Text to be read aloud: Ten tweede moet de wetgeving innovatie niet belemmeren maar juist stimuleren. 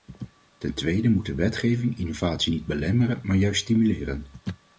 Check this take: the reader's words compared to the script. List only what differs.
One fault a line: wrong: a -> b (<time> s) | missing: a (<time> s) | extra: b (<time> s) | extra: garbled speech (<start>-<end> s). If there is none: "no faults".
no faults